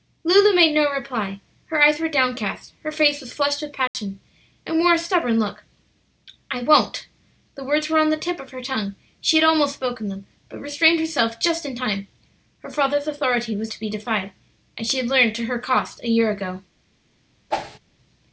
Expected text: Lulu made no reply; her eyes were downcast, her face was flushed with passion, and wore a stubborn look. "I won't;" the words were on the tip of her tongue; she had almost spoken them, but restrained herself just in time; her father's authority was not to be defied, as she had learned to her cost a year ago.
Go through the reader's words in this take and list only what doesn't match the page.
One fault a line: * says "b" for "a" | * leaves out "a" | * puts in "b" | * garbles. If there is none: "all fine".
* leaves out "not"